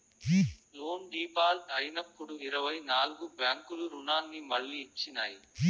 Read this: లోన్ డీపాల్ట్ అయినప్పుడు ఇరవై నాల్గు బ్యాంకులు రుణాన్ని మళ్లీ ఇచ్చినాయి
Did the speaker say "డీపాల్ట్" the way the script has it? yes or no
yes